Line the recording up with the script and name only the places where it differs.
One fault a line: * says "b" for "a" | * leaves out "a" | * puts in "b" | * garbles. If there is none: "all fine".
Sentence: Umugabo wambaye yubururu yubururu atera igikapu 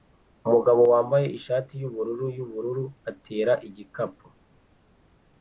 * puts in "ishati"